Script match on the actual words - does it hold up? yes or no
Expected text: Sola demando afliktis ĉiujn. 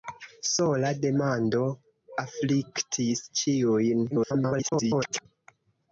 no